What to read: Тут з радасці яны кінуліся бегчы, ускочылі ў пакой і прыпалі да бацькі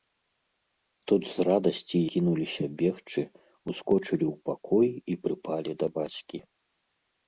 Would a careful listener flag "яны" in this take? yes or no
yes